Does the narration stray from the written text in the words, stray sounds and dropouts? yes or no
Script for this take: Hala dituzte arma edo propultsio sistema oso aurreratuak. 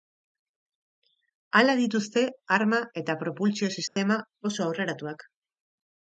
yes